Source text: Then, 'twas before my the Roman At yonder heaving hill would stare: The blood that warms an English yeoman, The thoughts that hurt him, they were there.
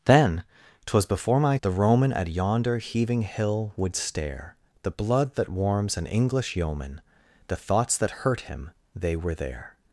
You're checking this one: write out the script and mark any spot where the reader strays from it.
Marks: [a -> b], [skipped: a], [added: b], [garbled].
Then, 'twas before my the Roman At yonder heaving hill would stare: The blood that warms an English yeoman, The thoughts that hurt him, they were there.